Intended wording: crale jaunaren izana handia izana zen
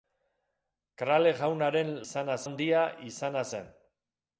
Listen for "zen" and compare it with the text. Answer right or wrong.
right